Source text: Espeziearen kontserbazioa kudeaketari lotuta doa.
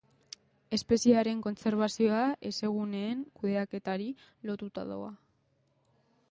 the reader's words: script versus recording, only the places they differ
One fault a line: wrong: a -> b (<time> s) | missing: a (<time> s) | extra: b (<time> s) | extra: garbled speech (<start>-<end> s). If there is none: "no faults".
extra: hezeguneen (2.5 s)